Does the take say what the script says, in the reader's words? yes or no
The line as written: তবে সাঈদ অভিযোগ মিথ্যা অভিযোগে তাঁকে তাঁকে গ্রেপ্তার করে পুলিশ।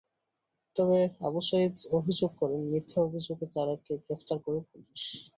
no